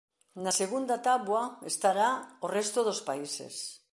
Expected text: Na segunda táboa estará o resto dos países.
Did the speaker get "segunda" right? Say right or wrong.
right